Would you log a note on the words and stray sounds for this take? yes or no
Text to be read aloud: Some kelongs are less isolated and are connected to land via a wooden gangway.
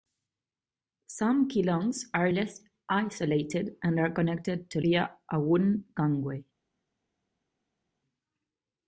yes